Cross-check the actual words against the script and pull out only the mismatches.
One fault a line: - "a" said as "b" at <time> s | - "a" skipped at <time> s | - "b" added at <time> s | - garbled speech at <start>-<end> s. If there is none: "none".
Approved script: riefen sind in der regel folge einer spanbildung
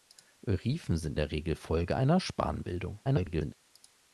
- "in" skipped at 1.2 s
- garbled speech at 3.0-3.5 s